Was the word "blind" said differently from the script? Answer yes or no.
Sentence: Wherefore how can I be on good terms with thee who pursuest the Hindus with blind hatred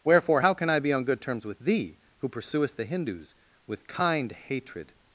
yes